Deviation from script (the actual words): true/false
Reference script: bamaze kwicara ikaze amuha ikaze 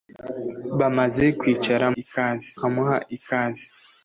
false